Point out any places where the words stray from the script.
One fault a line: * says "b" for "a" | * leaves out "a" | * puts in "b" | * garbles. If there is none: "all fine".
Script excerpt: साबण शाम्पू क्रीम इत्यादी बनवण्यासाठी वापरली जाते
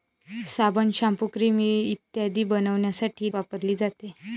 all fine